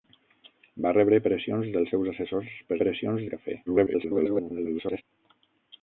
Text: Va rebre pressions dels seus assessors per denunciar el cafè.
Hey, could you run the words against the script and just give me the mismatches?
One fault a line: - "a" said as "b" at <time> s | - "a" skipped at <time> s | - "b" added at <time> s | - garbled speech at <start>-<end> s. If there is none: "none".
- "denunciar" said as "pressions" at 2.8 s
- garbled speech at 3.7-5.0 s